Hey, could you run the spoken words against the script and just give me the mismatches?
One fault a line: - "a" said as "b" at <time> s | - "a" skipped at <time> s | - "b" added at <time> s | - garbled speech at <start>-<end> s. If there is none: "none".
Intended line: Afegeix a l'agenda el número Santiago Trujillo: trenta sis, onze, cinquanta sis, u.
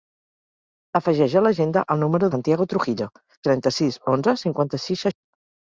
none